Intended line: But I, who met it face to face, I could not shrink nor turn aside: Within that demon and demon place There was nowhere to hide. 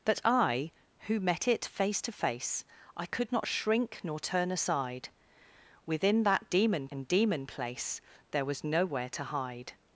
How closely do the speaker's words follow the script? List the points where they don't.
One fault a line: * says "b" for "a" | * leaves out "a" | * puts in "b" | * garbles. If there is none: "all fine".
all fine